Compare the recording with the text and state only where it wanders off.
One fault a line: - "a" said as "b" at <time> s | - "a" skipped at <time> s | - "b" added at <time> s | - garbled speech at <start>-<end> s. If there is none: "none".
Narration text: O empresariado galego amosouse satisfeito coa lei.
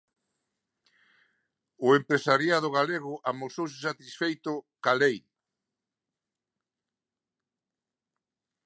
none